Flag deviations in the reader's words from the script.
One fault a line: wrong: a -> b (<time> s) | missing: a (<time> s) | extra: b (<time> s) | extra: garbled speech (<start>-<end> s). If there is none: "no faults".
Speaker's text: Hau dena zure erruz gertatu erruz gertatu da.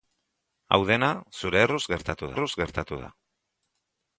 no faults